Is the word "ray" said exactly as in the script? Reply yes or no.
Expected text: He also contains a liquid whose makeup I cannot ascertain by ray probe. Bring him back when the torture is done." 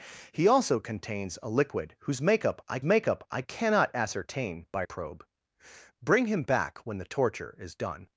no